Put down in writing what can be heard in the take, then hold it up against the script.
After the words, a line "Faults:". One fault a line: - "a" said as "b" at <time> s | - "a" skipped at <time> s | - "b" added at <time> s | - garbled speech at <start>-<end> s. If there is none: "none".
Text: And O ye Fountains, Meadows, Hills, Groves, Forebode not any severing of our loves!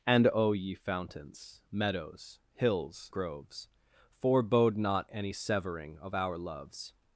And O ye Fountains, Meadows, Hills, Groves, Forebode not any severing of our loves!
Faults:
none